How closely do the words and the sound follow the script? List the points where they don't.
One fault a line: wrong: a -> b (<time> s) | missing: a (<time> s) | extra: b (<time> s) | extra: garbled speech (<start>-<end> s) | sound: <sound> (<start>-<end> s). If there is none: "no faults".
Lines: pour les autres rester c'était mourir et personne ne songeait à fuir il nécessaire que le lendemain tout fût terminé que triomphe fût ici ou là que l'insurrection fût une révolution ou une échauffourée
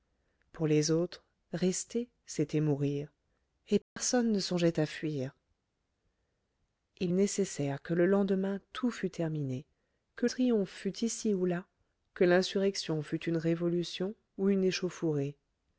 sound: dropout (3.8-4.0 s)